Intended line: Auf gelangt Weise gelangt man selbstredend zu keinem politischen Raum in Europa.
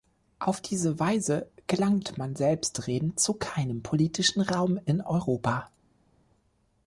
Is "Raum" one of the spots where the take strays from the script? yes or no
no